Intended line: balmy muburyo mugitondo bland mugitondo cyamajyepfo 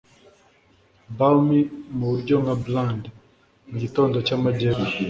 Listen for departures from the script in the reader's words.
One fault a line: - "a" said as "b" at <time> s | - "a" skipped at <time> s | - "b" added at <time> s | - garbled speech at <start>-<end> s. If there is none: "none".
- "mugitondo" said as "nka" at 2.4 s